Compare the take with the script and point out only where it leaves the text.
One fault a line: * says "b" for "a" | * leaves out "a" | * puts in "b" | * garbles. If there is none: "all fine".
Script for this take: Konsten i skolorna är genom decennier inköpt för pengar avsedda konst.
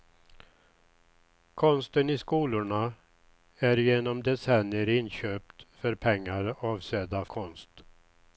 all fine